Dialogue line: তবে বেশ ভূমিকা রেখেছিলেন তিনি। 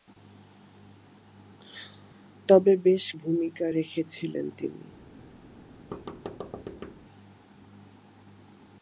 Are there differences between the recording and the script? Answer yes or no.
no